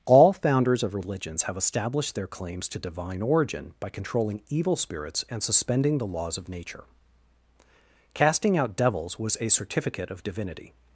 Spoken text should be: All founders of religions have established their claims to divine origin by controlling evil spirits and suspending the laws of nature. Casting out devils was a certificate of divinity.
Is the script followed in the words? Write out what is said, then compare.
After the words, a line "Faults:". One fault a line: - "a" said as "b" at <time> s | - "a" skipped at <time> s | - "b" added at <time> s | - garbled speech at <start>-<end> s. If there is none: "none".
All founders of religions have established their claims to divine origin by controlling evil spirits and suspending the laws of nature. Casting out devils was a certificate of divinity.
Faults:
none